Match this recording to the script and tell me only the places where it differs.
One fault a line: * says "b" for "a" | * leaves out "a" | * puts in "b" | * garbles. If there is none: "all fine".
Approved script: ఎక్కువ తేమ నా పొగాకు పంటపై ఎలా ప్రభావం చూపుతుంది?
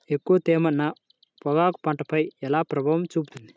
all fine